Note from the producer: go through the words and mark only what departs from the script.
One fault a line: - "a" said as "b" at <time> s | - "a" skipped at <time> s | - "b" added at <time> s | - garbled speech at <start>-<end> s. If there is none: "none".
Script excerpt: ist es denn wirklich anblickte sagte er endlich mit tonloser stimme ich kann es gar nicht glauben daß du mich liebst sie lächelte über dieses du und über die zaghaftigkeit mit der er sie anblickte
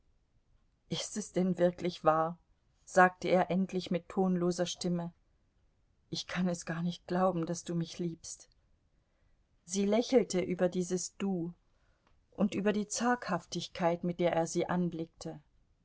- "anblickte" said as "wahr" at 2.0 s